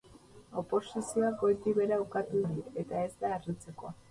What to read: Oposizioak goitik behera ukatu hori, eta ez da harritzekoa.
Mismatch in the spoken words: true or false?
false